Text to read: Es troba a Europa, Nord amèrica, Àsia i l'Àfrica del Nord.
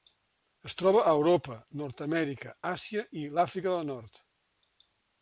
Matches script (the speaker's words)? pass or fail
pass